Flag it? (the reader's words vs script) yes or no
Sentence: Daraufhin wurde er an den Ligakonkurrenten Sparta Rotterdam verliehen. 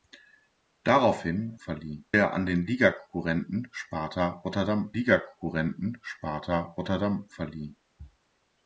yes